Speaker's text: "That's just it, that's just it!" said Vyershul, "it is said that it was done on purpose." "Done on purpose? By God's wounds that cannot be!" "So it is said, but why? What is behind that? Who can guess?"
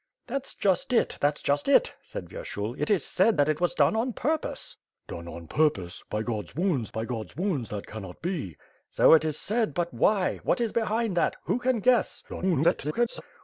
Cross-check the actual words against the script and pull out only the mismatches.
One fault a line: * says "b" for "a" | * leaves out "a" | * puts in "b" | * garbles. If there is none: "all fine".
* puts in "by God's wounds"
* garbles